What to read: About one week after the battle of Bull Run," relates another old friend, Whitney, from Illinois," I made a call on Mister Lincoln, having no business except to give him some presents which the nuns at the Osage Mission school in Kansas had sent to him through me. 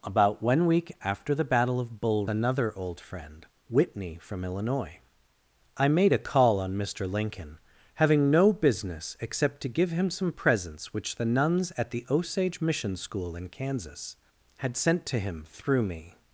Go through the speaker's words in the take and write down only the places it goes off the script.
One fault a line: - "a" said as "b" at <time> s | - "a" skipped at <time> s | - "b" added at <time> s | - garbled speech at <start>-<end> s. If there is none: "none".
- "Run relates" skipped at 2.3 s